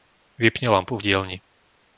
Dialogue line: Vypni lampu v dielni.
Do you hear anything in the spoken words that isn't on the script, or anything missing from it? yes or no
no